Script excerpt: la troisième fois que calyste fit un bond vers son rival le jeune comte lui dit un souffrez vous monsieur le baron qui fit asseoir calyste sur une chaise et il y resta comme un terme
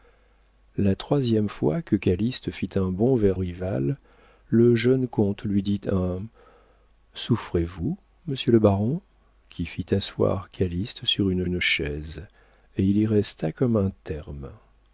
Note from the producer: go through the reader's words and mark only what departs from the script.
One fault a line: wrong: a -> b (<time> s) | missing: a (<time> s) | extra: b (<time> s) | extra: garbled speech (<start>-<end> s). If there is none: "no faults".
missing: son (3.4 s)
extra: une (11.4 s)